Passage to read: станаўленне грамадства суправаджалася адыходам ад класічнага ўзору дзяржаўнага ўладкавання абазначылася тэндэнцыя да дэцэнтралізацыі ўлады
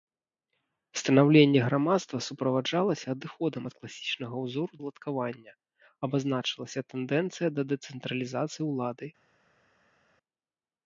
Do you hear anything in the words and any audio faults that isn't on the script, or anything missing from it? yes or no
yes